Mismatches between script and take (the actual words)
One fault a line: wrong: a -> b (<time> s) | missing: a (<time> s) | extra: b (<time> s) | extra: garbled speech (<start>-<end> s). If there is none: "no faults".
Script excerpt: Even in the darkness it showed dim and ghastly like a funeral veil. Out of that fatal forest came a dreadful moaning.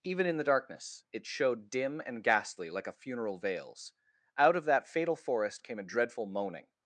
wrong: veil -> veils (3.4 s)